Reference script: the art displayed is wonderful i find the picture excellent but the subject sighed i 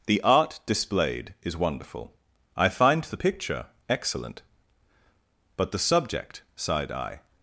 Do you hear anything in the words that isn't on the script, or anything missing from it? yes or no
no